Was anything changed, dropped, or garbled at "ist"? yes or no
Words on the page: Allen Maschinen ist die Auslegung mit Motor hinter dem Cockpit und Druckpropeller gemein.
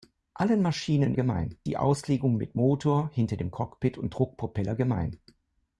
yes